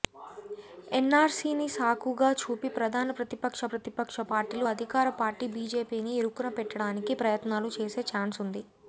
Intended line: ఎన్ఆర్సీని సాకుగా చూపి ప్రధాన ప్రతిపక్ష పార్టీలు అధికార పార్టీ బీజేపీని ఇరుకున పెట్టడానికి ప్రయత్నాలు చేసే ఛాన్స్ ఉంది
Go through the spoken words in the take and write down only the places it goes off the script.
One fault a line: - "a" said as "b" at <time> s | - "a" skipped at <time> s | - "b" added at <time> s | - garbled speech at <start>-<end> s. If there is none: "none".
- "ప్రతిపక్ష" added at 3.7 s